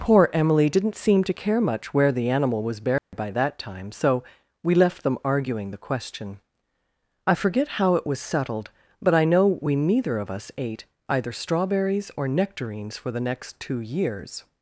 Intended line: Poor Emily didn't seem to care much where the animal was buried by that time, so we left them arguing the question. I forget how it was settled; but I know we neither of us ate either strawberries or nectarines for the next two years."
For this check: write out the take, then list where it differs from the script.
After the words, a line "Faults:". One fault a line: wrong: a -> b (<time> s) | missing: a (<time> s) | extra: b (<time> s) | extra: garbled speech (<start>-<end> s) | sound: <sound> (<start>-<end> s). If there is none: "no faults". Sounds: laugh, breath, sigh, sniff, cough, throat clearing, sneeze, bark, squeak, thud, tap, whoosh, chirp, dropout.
Poor Emily didn't seem to care much where the animal was buried by that time, so we left them arguing the question. I forget how it was settled; but I know we neither of us ate either strawberries or nectarines for the next two years."
Faults:
sound: dropout (3.0-3.1 s)